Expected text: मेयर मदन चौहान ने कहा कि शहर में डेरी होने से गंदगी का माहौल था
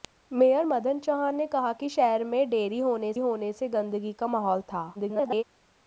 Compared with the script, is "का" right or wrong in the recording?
right